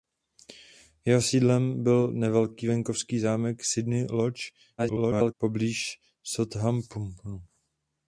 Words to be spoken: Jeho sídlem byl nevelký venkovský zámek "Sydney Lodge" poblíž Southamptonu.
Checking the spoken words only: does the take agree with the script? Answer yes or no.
no